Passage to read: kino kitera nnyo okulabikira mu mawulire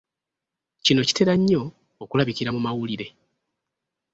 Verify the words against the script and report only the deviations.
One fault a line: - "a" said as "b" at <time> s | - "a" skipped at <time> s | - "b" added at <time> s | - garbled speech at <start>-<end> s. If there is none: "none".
none